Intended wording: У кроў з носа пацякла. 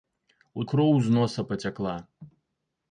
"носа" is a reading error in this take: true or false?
false